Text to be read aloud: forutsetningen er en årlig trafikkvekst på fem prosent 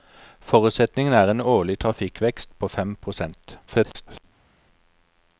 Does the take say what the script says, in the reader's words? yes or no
no